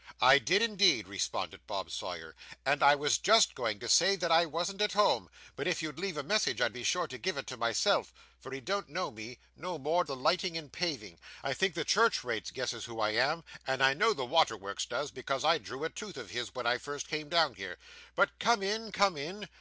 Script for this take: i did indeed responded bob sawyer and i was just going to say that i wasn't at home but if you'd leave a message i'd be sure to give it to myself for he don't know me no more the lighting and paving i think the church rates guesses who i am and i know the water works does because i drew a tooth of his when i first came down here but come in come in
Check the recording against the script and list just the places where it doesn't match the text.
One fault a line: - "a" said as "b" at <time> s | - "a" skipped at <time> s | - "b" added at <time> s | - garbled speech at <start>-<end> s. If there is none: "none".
none